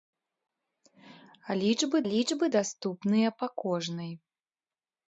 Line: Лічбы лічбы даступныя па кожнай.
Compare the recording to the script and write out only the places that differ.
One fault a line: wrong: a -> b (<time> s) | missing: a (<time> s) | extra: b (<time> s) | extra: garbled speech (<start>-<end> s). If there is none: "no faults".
no faults